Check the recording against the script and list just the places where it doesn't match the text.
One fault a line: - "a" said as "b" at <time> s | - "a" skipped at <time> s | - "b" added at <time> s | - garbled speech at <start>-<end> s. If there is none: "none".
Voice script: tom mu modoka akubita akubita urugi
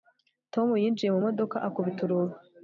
- "yinjiye" added at 0.8 s
- "akubita" skipped at 2.0 s